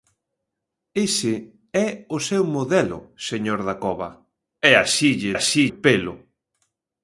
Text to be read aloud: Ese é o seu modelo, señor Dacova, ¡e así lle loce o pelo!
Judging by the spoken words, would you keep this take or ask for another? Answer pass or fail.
fail